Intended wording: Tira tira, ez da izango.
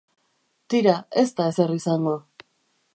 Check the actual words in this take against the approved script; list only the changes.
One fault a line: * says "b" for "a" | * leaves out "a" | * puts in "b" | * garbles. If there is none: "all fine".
* leaves out "tira"
* puts in "ezer"